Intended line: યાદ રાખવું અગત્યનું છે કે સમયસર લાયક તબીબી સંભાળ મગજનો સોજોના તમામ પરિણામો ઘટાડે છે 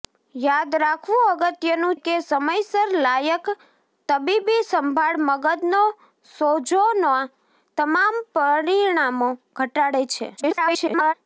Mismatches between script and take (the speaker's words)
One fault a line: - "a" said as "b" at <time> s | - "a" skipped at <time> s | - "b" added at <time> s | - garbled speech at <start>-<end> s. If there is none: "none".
- "છે" skipped at 2.0 s
- garbled speech at 10.4-11.1 s